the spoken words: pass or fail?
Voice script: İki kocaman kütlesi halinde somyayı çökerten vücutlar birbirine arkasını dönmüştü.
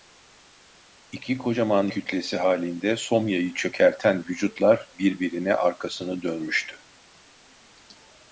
pass